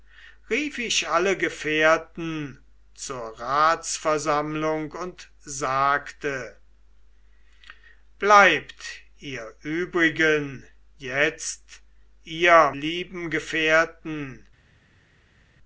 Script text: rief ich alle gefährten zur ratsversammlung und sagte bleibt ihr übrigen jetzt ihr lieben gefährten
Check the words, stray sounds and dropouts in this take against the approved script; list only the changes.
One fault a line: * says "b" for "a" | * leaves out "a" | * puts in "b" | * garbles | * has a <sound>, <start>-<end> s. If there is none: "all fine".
all fine